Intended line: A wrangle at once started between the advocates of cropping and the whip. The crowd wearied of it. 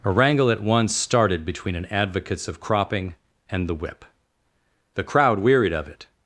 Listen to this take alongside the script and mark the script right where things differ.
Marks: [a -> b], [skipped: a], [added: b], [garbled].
A wrangle at once started between [the -> an] advocates of cropping and the whip. The crowd wearied of it.